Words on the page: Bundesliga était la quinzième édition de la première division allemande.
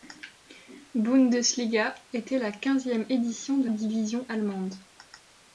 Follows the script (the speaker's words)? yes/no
no